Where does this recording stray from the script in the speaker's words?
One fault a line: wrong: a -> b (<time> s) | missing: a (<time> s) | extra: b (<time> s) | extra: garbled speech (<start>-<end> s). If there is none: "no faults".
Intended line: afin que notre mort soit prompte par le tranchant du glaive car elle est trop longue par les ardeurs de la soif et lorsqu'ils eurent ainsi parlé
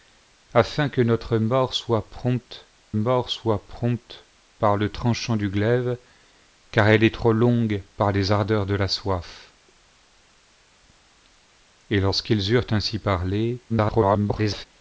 extra: mort soit prompte (2.9 s)
extra: garbled speech (13.7-14.7 s)